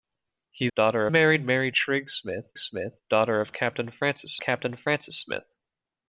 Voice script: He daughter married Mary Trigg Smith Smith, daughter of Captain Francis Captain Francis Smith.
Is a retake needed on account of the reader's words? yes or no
no